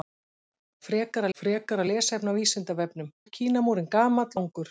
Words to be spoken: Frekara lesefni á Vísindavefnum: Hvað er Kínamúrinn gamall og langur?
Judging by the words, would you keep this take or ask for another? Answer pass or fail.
fail